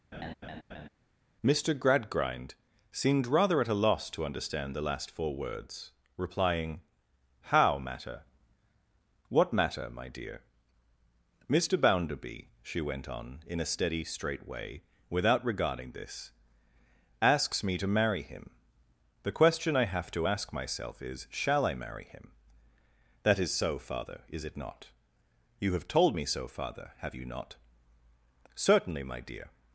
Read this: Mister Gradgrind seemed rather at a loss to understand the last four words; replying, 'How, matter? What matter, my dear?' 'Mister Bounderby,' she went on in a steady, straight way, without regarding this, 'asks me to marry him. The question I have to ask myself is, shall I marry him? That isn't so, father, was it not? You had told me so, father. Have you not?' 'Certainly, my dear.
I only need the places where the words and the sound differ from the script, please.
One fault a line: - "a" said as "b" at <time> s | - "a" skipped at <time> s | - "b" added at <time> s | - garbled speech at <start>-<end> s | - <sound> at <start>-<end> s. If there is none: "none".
- laugh at 0.1-0.9 s
- "isn't" said as "is" at 23.4 s
- "was" said as "is" at 24.3 s
- "had" said as "have" at 25.7 s